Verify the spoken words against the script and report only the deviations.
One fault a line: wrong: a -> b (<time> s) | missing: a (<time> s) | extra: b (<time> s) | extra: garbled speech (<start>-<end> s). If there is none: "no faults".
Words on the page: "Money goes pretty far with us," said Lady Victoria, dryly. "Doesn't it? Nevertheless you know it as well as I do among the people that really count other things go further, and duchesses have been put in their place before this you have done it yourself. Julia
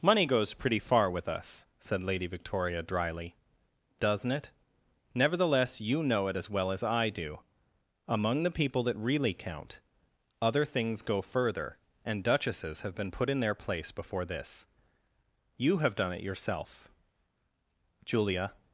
no faults